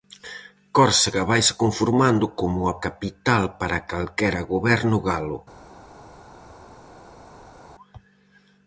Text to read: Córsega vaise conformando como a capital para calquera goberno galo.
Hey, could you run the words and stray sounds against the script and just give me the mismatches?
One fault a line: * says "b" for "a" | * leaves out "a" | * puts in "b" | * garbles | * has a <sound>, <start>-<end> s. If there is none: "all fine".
all fine